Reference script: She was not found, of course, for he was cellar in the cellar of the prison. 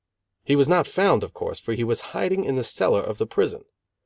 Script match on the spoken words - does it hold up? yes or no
no